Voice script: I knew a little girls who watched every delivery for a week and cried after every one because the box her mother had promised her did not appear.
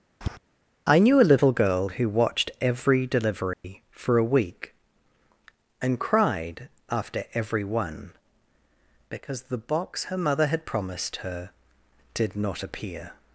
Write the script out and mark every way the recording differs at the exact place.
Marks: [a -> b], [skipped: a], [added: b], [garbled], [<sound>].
[tap] I knew a little [girls -> girl] who watched every delivery [dropout] for a week and cried after every one because the box her mother had promised her did not appear.